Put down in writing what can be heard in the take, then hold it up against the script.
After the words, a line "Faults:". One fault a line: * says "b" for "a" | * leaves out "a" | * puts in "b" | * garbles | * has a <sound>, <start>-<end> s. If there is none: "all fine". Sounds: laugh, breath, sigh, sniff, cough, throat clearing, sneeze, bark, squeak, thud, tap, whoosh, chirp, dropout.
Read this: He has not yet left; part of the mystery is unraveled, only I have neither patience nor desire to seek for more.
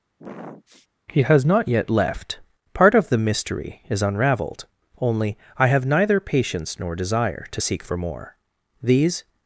He has not yet left; part of the mystery is unraveled, only I have neither patience nor desire to seek for more. These
Faults:
* has a sniff, 0.2-0.9 s
* puts in "These"